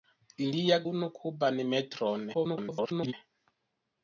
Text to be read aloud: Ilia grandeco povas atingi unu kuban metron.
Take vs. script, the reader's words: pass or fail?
fail